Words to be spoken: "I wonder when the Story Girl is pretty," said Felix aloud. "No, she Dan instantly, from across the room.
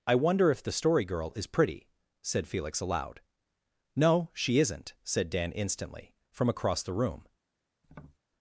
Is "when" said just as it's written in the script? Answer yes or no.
no